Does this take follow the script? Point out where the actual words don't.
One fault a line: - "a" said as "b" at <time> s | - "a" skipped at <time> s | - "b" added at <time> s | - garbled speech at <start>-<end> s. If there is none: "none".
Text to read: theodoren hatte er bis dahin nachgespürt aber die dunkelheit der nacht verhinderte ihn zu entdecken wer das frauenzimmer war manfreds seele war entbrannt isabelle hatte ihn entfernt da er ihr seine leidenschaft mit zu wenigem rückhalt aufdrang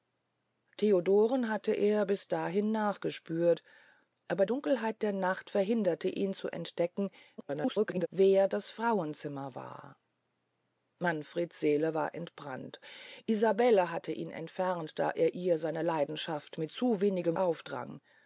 - "die" skipped at 4.5 s
- garbled speech at 7.4-8.1 s
- "rückhalt" skipped at 17.4 s